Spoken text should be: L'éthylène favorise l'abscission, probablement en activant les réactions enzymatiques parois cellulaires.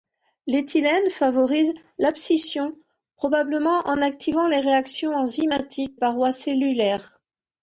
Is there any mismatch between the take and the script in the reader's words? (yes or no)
no